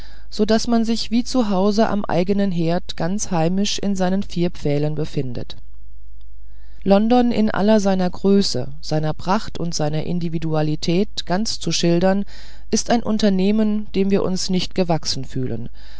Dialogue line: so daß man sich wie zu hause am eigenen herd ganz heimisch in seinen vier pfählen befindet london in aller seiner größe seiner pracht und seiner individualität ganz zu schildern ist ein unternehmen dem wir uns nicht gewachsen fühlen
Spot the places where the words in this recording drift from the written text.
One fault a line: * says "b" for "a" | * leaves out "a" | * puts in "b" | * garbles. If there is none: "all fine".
all fine